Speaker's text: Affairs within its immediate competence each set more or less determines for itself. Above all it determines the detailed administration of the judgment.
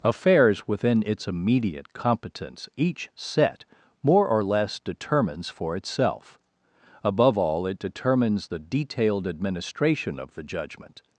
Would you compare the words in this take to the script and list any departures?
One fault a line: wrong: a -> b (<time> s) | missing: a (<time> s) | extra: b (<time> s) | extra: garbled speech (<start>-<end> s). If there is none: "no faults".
no faults